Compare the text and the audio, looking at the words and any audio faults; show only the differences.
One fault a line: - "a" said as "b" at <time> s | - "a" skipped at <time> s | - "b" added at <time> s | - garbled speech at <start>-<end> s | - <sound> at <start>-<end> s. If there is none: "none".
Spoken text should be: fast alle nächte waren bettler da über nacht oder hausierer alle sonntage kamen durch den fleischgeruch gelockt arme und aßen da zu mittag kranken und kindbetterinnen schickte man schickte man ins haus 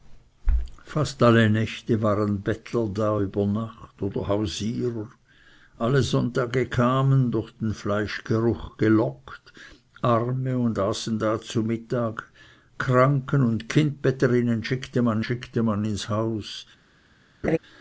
- laugh at 17.4-17.6 s